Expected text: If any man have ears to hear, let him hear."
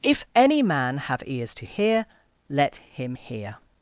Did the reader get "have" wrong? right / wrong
right